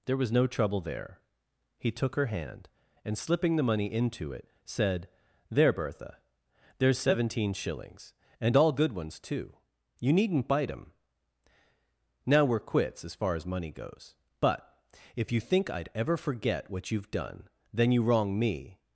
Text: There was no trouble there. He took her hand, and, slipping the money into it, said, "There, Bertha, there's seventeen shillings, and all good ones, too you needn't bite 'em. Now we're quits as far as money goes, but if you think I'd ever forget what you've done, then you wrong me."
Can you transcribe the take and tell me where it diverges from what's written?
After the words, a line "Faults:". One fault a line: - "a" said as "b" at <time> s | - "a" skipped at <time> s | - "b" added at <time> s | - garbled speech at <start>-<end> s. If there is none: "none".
There was no trouble there. He took her hand, and, slipping the money into it, said, "There, Bertha, there's seventeen shillings, and all good ones, too you needn't bite 'em. Now we're quits as far as money goes, but if you think I'd ever forget what you've done, then you wrong me."
Faults:
none